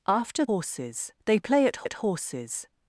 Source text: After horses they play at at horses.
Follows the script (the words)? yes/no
yes